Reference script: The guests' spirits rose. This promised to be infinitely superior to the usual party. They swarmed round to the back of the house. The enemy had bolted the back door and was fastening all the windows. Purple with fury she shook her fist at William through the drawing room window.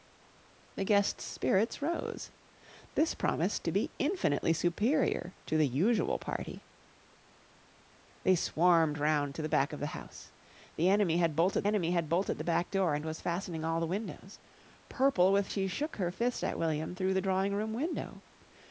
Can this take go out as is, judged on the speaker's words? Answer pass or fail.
fail